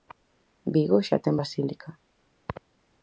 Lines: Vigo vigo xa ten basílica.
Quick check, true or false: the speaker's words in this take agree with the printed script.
false